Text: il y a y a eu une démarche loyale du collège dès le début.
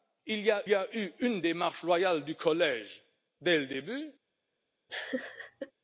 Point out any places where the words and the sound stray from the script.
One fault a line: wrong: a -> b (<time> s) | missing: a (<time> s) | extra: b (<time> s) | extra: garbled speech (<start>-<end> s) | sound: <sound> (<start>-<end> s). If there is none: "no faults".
sound: laugh (4.9-5.7 s)